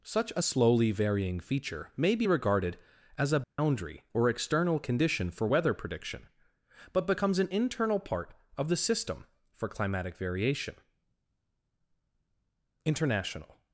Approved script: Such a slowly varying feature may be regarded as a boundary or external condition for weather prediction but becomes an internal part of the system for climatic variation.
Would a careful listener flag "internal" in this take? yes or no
no